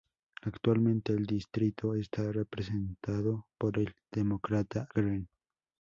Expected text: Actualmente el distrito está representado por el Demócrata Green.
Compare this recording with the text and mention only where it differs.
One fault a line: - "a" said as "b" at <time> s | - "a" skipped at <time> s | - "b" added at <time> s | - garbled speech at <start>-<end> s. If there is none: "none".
none